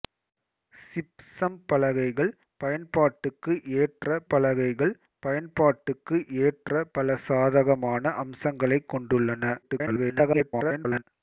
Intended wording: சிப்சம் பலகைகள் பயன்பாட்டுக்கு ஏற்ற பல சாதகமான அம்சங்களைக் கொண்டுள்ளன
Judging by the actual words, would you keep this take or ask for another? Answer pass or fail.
fail